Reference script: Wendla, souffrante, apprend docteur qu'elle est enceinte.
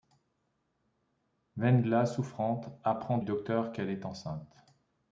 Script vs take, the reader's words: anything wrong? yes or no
no